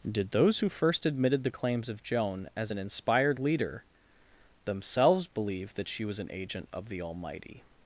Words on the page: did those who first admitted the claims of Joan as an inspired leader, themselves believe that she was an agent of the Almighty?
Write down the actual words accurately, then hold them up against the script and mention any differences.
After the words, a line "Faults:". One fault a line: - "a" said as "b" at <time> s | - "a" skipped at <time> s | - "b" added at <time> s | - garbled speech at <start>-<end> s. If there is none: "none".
did those who first admitted the claims of Joan as an inspired leader, themselves believe that she was an agent of the Almighty?
Faults:
none